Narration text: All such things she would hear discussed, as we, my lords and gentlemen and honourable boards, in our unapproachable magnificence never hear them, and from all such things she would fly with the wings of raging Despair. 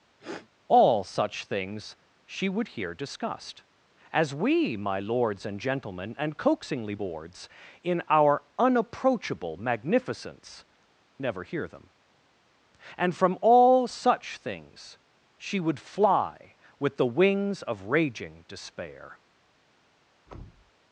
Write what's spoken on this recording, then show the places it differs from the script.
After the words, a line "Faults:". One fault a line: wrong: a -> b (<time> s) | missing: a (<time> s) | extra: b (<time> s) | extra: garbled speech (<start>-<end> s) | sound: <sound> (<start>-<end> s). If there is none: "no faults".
All such things she would hear discussed, as we, my lords and gentlemen and coaxingly boards, in our unapproachable magnificence never hear them, and from all such things she would fly with the wings of raging Despair.
Faults:
sound: sniff (0.2-0.5 s)
wrong: honourable -> coaxingly (6.4 s)
sound: thud (20.3-20.7 s)